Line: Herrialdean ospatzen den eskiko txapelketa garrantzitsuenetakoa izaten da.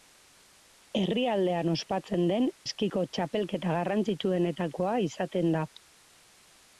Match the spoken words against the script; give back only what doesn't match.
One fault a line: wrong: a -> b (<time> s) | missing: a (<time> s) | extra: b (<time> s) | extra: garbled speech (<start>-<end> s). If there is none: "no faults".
no faults